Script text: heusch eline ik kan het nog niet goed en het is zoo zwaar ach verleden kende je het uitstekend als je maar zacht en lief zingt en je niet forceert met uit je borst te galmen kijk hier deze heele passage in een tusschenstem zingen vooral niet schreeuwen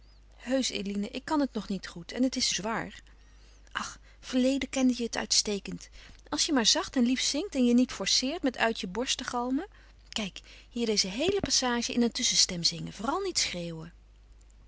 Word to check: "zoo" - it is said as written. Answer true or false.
false